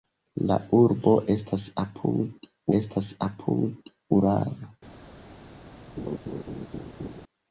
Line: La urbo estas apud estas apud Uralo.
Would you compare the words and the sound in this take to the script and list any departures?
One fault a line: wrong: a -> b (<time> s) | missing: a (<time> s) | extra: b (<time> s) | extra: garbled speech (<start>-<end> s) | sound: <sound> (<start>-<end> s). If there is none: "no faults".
sound: laugh (6.0-7.2 s)